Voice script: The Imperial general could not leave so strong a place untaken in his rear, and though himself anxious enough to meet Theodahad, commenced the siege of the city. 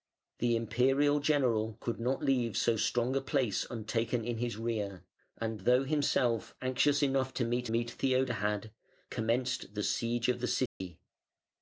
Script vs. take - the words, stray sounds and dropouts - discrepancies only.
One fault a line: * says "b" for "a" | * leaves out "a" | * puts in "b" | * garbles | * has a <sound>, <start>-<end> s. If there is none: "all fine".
* puts in "meet"
* has a dropout, 10.7-10.8 s